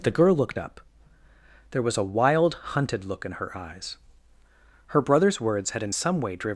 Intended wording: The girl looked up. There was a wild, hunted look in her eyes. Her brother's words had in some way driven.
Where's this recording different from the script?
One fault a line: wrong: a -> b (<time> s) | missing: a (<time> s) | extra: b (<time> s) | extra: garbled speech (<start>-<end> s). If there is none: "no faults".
no faults